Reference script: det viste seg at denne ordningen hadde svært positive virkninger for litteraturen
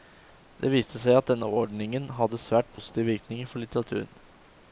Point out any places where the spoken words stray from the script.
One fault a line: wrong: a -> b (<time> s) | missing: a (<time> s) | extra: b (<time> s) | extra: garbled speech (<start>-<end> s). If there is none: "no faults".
no faults